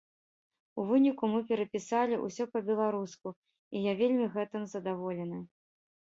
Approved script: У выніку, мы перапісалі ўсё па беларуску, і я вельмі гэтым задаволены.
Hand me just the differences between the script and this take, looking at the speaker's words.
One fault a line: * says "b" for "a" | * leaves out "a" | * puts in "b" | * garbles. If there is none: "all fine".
all fine